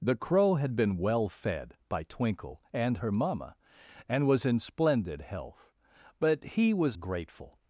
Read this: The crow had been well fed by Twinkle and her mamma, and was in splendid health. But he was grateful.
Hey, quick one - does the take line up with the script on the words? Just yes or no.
yes